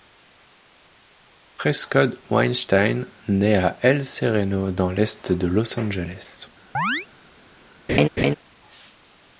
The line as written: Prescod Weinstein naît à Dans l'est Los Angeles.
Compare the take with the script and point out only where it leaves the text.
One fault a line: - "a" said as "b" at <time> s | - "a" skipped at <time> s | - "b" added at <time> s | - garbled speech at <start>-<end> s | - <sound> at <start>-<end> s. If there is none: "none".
- "El Sereno" added at 3.8 s
- "de" added at 5.3 s
- chirp at 6.7-7.1 s
- laugh at 7.9-8.4 s